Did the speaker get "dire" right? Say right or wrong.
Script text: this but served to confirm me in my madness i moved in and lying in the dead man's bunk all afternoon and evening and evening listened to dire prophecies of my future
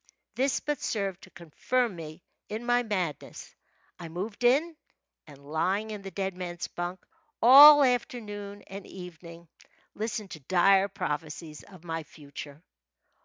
right